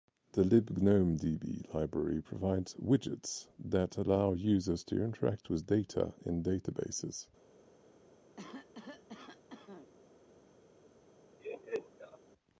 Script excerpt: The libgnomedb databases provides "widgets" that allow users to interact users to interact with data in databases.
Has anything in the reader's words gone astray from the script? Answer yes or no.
yes